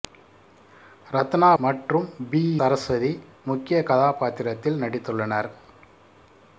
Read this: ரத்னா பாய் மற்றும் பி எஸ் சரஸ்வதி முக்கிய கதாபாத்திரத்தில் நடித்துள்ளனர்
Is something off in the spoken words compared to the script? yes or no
yes